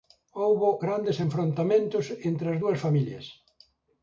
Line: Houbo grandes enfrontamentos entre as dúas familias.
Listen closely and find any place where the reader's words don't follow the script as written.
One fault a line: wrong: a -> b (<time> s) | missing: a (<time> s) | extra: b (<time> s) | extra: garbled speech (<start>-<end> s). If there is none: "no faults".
no faults